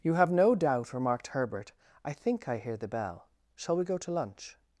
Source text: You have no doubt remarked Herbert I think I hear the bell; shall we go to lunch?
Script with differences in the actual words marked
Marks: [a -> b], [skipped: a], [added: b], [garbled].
You have no doubt remarked Herbert I think I hear the bell; shall we go to lunch?